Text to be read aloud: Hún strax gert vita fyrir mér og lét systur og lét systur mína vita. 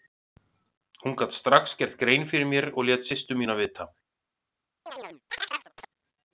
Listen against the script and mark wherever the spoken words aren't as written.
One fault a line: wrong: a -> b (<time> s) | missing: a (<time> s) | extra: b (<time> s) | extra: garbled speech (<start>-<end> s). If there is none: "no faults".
extra: gat (1.2 s)
wrong: vita -> grein (2.0 s)
missing: og lét systur (3.4 s)